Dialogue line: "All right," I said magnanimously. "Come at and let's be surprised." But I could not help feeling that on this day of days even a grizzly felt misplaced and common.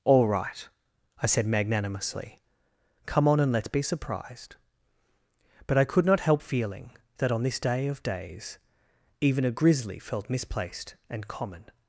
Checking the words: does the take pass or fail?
fail